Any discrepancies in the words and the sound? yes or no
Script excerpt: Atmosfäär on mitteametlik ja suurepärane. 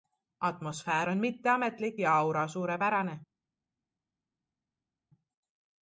yes